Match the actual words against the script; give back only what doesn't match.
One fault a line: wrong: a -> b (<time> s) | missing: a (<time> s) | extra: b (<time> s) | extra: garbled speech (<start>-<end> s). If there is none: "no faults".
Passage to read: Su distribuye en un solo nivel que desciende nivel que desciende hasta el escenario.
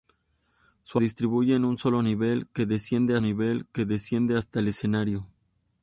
no faults